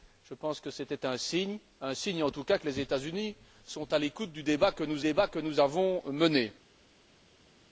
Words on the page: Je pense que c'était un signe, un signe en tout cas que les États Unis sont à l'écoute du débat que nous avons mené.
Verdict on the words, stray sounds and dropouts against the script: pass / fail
fail